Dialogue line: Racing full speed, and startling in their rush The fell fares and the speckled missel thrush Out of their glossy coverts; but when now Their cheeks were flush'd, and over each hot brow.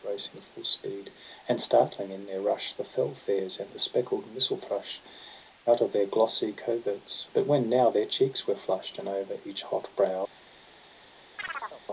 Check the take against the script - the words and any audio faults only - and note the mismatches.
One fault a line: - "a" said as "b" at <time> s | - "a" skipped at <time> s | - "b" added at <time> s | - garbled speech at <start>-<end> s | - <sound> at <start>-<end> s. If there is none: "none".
- chirp at 11.4-11.8 s